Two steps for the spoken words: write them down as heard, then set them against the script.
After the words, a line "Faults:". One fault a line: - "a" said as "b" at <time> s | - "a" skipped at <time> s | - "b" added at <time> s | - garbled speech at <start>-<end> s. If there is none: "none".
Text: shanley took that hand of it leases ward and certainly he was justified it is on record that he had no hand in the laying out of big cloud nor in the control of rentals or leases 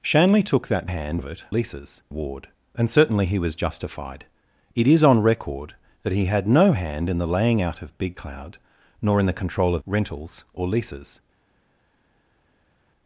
shanley took that hand of it leases ward and certainly he was justified it is on record that he had no hand in the laying out of big cloud nor in the control of rentals or leases
Faults:
none